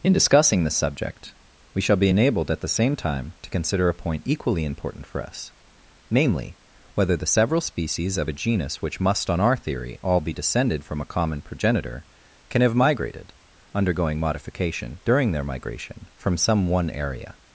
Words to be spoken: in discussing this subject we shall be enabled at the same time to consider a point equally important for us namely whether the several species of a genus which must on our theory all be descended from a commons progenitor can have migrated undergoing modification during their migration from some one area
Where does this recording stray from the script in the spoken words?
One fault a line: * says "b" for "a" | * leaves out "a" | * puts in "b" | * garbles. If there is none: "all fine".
* says "common" for "commons"